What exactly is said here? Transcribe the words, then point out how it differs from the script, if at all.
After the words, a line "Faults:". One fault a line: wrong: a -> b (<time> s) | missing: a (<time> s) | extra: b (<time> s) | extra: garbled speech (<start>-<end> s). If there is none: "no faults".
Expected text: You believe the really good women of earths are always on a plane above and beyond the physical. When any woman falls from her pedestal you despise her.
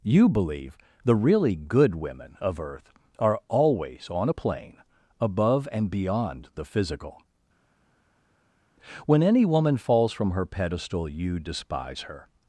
You believe the really good women of earth are always on a plane above and beyond the physical. When any woman falls from her pedestal you despise her.
Faults:
wrong: earths -> earth (2.6 s)